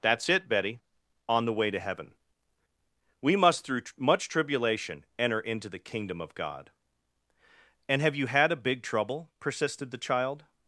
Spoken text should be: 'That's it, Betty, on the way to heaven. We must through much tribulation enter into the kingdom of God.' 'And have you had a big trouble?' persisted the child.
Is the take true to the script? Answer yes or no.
yes